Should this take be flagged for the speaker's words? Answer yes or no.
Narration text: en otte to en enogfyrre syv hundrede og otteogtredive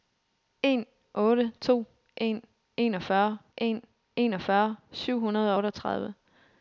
yes